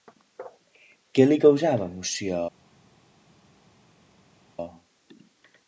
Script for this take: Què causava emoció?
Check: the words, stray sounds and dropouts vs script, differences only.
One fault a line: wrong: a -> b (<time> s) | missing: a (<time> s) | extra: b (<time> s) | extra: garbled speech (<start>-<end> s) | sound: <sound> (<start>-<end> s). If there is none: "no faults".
extra: li (1.3 s)